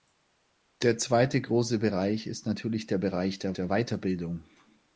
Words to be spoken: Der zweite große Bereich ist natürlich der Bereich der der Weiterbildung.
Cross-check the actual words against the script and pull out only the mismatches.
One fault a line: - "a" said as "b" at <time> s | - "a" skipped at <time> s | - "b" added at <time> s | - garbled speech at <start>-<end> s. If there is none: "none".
none